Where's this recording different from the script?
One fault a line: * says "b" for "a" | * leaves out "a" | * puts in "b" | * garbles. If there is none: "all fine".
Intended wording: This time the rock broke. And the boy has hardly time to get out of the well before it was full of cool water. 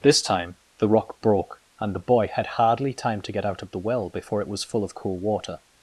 * says "had" for "has"